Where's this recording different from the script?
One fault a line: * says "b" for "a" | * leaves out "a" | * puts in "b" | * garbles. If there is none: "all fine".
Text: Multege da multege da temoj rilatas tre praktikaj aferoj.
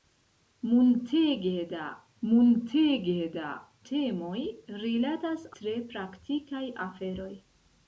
all fine